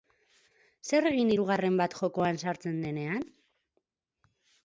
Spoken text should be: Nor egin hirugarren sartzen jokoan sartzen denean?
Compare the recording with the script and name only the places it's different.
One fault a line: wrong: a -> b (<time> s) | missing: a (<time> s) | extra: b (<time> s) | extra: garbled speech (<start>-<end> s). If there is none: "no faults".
wrong: Nor -> Zer (0.9 s)
wrong: sartzen -> bat (1.8 s)